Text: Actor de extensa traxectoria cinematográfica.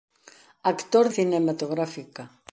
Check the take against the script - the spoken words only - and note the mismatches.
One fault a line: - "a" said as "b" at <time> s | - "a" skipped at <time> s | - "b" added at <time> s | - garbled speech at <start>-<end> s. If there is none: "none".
- "de extensa traxectoria" skipped at 1.1 s